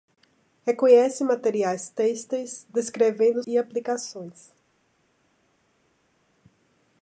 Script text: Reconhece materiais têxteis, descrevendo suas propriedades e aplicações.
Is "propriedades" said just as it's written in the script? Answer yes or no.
no